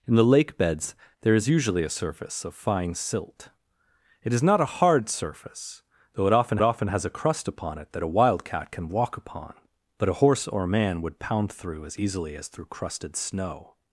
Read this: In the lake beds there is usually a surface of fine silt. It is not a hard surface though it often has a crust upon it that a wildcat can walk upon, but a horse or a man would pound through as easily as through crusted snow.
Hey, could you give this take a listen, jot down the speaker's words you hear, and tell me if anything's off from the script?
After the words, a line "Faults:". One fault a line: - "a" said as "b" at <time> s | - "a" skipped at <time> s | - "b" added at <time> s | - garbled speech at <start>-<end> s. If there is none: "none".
In the lake beds there is usually a surface of fine silt. It is not a hard surface though it often often has a crust upon it that a wildcat can walk upon, but a horse or a man would pound through as easily as through crusted snow.
Faults:
- "often" added at 6.6 s